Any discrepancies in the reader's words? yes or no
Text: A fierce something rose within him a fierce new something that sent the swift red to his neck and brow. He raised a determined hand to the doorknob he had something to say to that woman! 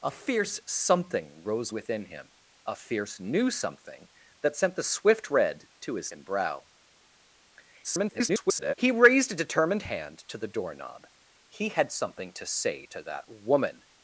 yes